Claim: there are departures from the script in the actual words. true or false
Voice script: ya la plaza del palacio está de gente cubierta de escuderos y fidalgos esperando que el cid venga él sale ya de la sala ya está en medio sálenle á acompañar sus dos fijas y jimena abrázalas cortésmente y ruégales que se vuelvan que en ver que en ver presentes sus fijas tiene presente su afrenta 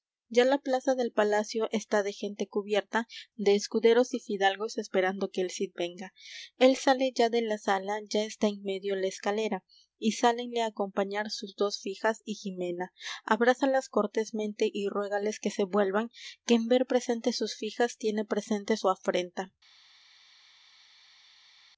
true